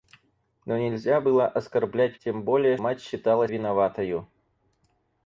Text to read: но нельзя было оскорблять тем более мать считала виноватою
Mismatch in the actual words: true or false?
false